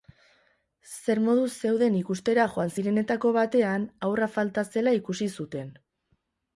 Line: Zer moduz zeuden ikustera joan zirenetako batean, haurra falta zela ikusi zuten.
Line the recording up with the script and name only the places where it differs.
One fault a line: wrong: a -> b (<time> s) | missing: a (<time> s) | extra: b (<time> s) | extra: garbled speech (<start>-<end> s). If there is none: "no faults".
no faults